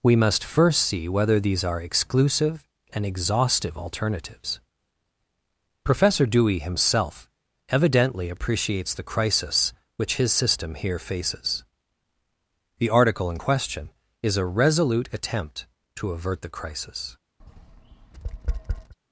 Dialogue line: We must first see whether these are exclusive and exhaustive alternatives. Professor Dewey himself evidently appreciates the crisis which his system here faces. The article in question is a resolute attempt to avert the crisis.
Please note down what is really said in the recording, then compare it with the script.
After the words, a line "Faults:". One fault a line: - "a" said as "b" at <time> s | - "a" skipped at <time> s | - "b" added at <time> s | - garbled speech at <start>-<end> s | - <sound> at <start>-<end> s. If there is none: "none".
We must first see whether these are exclusive and exhaustive alternatives. Professor Dewey himself evidently appreciates the crisis which his system here faces. The article in question is a resolute attempt to avert the crisis.
Faults:
- tap at 17.4-18.9 s